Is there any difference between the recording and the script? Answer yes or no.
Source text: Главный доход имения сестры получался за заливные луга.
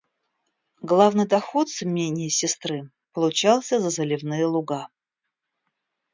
yes